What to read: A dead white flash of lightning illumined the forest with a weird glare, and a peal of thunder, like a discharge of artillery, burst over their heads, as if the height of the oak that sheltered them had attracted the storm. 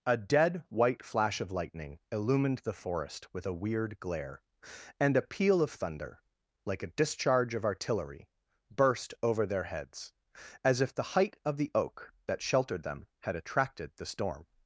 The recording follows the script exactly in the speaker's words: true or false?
true